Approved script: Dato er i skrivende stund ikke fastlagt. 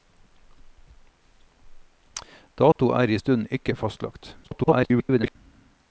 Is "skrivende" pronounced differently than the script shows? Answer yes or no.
yes